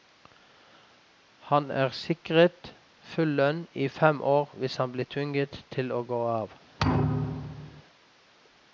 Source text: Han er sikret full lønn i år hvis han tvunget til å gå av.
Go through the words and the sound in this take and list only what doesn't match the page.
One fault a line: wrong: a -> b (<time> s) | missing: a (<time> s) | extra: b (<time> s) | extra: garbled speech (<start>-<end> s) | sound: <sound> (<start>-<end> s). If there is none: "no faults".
extra: fem (4.0 s)
extra: blir (4.9 s)
sound: thud (6.8-7.8 s)